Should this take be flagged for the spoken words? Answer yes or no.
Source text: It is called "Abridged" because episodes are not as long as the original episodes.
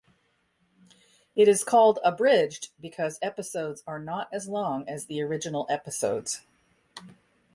no